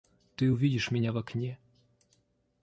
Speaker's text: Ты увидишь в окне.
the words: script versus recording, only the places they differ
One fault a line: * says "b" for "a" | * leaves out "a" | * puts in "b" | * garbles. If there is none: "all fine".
* puts in "меня"